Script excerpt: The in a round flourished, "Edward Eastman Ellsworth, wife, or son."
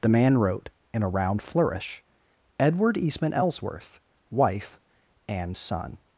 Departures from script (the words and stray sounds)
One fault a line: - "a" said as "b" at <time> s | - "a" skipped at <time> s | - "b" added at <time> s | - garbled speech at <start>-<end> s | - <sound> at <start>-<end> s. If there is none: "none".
- "man wrote" added at 0.1 s
- "flourished" said as "flourish" at 1.4 s
- "or" said as "and" at 5.3 s